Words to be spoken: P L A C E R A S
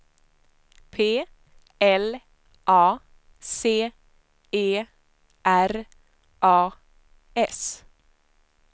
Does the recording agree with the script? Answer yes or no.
yes